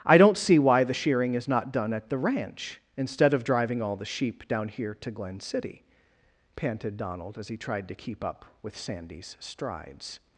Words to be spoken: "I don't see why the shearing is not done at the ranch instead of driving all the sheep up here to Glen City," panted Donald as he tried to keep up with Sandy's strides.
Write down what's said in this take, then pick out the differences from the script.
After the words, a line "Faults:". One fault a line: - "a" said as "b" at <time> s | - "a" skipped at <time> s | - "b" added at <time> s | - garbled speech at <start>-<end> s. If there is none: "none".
"I don't see why the shearing is not done at the ranch instead of driving all the sheep down here to Glen City," panted Donald as he tried to keep up with Sandy's strides.
Faults:
- "up" said as "down" at 4.5 s